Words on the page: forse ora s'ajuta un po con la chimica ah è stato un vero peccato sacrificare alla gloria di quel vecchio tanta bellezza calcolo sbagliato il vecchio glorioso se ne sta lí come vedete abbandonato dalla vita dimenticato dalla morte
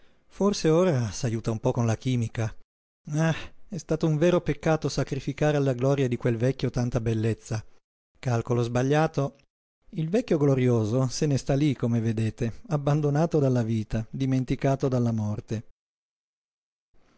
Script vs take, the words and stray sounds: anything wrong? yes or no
no